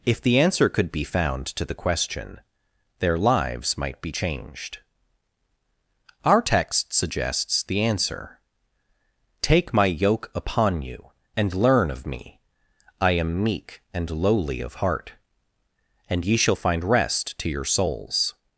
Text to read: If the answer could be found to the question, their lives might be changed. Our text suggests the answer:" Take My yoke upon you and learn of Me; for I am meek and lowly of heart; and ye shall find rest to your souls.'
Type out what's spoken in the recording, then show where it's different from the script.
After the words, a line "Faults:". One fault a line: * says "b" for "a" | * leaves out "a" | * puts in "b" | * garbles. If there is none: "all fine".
If the answer could be found to the question, their lives might be changed. Our text suggests the answer:" Take My yoke upon you and learn of Me; I am meek and lowly of heart; and ye shall find rest to your souls.'
Faults:
* leaves out "for"